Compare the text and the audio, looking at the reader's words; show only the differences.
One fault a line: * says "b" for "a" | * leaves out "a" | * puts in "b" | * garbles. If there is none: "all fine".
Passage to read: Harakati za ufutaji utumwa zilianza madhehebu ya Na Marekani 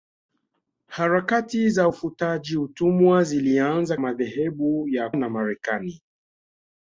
all fine